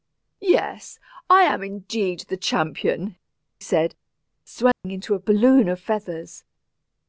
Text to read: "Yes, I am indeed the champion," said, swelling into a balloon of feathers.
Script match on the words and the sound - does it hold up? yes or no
no